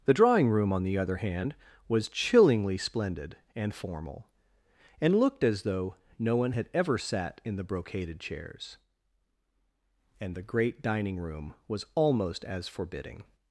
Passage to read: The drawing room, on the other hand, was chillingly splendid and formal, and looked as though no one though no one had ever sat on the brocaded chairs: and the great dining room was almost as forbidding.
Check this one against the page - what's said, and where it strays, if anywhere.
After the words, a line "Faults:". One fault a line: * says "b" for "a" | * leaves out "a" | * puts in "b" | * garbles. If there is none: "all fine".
The drawing room, on the other hand, was chillingly splendid and formal, and looked as though no one had ever sat in the brocaded chairs: and the great dining room was almost as forbidding.
Faults:
* leaves out "though no one"
* says "in" for "on"